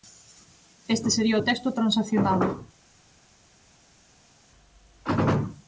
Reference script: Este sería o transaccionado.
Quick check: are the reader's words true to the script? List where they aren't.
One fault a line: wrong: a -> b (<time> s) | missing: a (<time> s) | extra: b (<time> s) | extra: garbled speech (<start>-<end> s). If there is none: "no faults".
extra: texto (1.4 s)